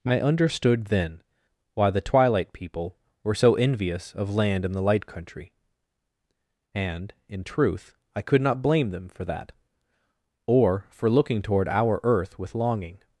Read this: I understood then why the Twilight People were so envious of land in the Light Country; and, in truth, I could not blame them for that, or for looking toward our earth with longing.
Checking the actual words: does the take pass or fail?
pass